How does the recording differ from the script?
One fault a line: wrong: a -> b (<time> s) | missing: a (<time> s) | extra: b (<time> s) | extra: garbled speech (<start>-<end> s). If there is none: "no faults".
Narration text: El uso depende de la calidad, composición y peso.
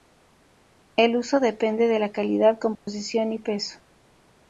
no faults